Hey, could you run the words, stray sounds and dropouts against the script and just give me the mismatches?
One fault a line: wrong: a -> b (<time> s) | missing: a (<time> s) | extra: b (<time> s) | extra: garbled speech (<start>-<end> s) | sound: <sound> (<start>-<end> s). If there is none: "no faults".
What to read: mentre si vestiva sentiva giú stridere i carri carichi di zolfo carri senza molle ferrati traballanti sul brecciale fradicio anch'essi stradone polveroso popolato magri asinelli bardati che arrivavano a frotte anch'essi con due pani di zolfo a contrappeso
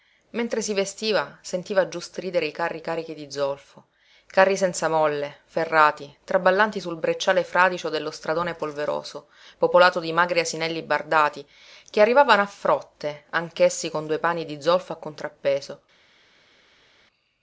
wrong: anch'essi -> dello (7.9 s)
extra: di (10.0 s)